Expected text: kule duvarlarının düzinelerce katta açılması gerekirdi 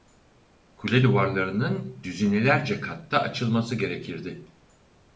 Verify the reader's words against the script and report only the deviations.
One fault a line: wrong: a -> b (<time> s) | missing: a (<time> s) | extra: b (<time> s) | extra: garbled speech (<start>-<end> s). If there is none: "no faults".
no faults